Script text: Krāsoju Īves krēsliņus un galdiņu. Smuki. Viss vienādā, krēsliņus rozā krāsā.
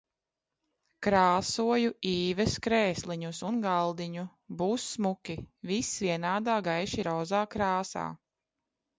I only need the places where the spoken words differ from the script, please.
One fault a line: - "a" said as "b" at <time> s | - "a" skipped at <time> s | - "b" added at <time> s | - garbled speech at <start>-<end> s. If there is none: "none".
- "Būs" added at 4.6 s
- "krēsliņus" said as "gaiši" at 6.7 s